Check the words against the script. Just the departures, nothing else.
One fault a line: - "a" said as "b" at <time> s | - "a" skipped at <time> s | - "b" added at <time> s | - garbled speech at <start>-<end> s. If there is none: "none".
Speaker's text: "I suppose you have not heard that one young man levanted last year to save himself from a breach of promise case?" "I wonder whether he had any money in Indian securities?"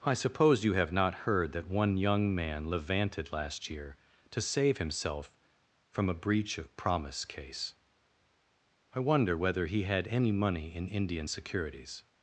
none